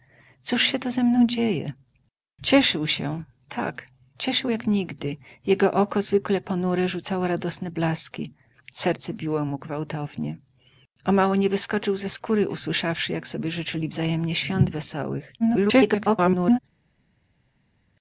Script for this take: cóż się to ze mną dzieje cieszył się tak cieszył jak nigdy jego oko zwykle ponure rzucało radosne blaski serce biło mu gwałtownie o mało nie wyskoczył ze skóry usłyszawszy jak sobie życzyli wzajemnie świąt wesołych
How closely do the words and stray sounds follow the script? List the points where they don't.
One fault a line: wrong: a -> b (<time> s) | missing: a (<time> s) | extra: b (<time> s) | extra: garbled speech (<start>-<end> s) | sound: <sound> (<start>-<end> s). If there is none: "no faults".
extra: garbled speech (15.4-16.6 s)